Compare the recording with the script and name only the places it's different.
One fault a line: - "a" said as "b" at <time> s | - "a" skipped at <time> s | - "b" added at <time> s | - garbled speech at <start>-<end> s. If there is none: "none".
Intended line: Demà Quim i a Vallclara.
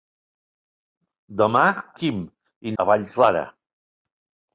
none